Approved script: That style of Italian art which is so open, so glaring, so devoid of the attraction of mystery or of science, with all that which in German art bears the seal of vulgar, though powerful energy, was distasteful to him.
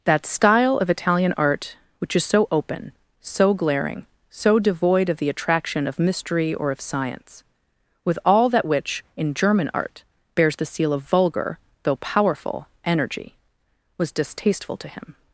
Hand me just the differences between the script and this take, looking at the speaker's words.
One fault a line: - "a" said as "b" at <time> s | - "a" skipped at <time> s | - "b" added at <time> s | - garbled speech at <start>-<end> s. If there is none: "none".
none